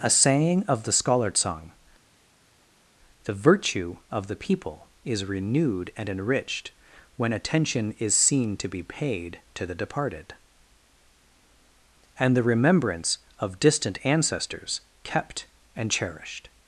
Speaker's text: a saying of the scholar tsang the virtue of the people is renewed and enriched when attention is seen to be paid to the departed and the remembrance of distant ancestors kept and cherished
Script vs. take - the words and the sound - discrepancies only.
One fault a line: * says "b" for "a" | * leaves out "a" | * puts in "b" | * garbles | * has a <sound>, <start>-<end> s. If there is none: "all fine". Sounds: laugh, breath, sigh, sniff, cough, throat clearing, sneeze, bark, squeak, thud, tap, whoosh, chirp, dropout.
all fine